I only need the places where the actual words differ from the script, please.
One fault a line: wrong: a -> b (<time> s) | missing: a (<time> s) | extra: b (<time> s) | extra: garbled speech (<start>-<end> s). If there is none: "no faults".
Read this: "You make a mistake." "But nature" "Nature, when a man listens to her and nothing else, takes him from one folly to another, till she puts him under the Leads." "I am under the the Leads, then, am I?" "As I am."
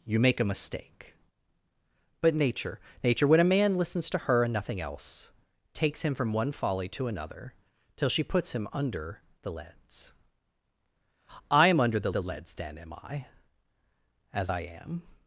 no faults